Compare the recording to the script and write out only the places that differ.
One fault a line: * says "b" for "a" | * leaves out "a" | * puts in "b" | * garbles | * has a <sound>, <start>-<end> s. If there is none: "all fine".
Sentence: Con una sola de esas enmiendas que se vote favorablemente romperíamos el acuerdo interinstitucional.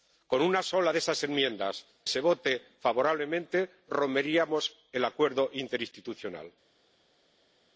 * leaves out "que"